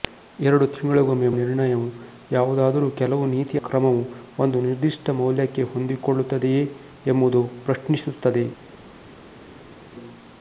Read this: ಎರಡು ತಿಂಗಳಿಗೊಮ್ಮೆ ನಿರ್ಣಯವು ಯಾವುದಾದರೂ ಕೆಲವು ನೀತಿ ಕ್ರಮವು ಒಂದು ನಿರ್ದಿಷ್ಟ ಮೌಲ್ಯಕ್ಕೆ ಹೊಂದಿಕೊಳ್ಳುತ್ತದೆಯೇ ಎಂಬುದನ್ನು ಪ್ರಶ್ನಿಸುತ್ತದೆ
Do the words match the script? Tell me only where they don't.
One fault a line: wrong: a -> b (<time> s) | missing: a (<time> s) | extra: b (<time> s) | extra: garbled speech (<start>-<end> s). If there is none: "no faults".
no faults